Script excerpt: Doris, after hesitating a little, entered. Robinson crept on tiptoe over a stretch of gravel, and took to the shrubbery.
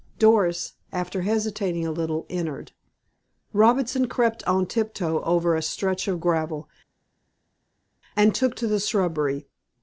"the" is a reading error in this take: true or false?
false